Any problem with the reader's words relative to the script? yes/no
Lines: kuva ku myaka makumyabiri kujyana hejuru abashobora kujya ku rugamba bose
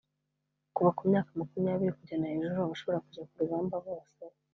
no